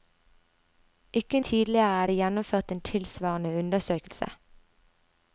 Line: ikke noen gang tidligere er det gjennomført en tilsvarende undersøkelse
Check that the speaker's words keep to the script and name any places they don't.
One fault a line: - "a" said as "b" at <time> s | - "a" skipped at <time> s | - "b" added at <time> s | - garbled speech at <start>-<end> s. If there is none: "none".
- "noen gang" skipped at 1.4 s